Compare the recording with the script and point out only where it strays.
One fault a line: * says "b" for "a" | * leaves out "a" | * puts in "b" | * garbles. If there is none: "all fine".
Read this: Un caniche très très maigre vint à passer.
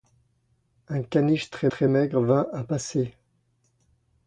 all fine